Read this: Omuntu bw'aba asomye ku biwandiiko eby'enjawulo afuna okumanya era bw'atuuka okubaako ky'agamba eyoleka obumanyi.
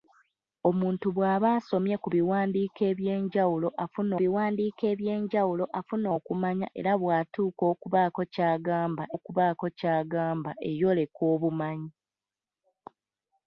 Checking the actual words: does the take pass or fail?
fail